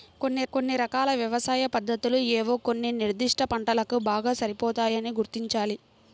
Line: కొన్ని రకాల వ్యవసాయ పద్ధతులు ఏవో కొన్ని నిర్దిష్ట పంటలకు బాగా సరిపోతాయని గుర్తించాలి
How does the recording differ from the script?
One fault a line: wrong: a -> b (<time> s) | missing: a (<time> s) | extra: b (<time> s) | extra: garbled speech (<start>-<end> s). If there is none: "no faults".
extra: కొన్ని (0.5 s)